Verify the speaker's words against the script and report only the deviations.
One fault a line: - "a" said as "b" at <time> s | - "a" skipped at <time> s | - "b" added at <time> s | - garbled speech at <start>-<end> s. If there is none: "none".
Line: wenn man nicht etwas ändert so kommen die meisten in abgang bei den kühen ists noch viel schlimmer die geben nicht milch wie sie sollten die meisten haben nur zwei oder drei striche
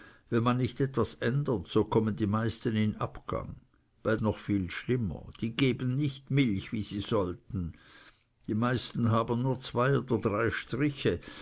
- "den kühen ists" skipped at 4.2 s